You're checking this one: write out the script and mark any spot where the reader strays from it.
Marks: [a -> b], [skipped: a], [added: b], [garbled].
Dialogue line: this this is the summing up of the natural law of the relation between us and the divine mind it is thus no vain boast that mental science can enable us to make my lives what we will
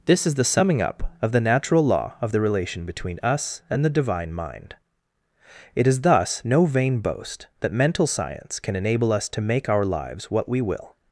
this [skipped: this] is the summing up of the natural law of the relation between us and the divine mind it is thus no vain boast that mental science can enable us to make [my -> our] lives what we will